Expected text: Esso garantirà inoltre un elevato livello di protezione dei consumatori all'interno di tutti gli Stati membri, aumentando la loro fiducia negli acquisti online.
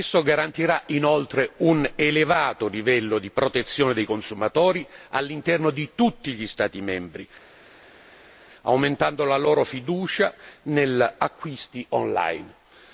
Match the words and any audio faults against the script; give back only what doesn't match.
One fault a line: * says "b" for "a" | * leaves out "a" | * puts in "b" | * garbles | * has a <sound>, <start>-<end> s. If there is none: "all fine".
all fine